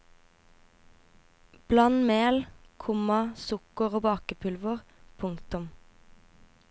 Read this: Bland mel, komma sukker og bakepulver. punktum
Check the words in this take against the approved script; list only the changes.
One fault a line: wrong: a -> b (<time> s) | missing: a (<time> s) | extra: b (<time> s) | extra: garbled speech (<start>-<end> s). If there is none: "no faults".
no faults